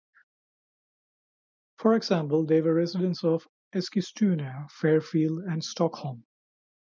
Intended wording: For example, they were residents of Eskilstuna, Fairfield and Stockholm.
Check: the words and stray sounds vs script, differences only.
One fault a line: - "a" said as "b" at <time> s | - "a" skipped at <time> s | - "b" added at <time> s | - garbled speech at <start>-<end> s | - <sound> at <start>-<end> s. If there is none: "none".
none